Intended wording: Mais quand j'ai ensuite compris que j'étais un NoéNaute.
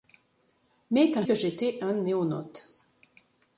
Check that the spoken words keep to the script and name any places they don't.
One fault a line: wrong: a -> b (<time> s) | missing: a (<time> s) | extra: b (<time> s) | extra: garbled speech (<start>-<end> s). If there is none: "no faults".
missing: j'ai ensuite compris (1.3 s)